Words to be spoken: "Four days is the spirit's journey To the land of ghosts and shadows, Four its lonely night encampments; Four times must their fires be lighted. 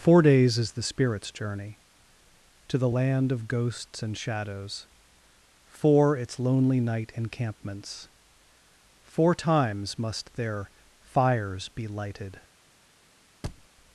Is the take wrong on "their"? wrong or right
right